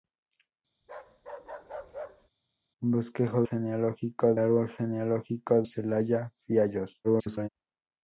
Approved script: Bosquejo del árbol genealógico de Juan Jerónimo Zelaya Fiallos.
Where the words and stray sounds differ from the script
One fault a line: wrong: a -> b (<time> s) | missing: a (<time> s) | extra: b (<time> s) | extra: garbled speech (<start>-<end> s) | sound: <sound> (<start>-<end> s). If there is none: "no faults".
sound: bark (0.8-2.3 s)
wrong: del -> genealógico (3.4 s)
missing: de Juan Jerónimo (5.6 s)
extra: garbled speech (7.0-7.5 s)